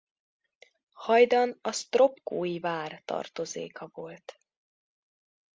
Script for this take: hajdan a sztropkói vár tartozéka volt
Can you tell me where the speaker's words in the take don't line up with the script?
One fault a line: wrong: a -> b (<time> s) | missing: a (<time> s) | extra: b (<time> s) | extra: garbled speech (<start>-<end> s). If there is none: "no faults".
no faults